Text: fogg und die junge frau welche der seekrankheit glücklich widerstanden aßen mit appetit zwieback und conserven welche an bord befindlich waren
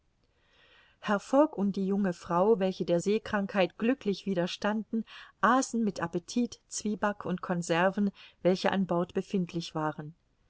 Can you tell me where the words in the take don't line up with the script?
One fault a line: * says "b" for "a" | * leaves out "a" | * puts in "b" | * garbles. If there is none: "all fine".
all fine